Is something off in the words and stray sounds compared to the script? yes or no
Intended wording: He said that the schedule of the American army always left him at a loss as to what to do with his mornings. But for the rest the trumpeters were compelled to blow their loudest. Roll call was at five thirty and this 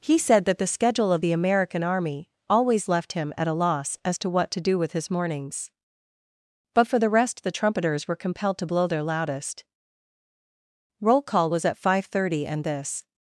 no